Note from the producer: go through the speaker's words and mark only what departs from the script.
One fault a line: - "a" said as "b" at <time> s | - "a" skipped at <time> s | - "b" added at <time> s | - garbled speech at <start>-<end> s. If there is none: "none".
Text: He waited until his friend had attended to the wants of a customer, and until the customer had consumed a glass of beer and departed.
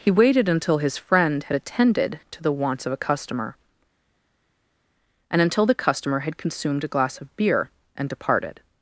none